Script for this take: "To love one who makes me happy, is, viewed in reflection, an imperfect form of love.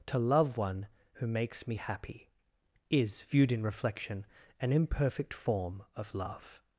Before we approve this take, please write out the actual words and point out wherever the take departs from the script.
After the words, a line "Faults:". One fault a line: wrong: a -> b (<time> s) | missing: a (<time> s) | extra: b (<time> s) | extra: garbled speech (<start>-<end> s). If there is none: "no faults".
"To love one who makes me happy, is, viewed in reflection, an imperfect form of love.
Faults:
no faults